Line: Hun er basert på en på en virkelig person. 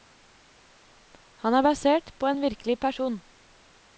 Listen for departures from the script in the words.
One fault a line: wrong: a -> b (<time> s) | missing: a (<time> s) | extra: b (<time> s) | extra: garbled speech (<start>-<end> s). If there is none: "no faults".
wrong: Hun -> Han (1.4 s)
missing: på en (2.4 s)